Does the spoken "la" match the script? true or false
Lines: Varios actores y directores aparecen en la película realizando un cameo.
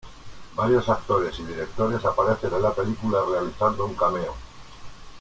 true